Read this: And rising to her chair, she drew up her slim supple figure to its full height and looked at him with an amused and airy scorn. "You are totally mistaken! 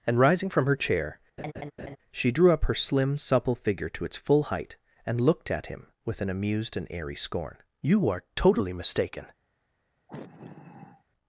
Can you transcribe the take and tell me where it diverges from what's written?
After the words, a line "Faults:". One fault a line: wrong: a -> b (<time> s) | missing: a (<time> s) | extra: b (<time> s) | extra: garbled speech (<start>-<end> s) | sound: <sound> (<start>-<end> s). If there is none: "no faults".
And rising from her chair, she drew up her slim supple figure to its full height and looked at him with an amused and airy scorn. "You are totally mistaken!
Faults:
wrong: to -> from (0.5 s)
sound: laugh (1.4-2.0 s)
sound: sigh (10.1-11.0 s)